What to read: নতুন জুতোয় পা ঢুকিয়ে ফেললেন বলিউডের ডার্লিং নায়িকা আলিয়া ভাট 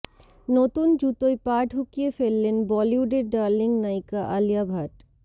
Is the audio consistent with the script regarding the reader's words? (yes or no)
yes